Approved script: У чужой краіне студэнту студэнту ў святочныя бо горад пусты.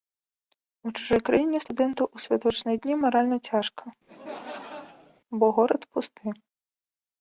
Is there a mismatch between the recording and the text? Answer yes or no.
yes